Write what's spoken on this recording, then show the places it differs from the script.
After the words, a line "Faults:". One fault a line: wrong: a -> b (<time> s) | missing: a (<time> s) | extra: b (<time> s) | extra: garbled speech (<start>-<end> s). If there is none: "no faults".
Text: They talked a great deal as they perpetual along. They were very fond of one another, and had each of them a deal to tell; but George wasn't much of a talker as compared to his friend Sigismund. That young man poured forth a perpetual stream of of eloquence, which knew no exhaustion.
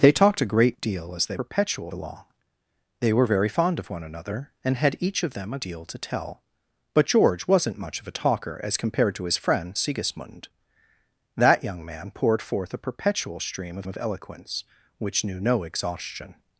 They talked a great deal as they perpetual along. They were very fond of one another, and had each of them a deal to tell; but George wasn't much of a talker as compared to his friend Sigismund. That young man poured forth a perpetual stream of of eloquence, which knew no exhaustion.
Faults:
no faults